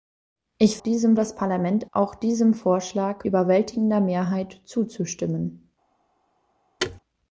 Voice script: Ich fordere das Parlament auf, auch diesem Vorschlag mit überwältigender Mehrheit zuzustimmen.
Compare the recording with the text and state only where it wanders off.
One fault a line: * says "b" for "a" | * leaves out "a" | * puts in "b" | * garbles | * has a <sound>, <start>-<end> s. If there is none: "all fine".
* says "diesem" for "fordere"
* leaves out "auf"
* leaves out "mit"
* has a thud, 6.8-7.0 s